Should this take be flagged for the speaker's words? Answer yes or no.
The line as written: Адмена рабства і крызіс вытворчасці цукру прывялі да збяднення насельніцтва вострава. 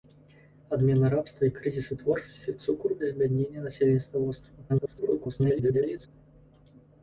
yes